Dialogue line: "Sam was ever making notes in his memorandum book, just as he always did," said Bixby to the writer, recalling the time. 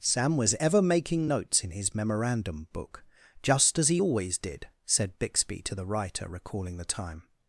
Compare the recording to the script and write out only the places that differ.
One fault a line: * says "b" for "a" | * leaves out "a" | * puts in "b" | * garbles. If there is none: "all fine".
all fine